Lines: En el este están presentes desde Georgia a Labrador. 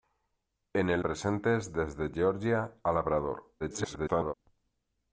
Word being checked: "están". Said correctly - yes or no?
no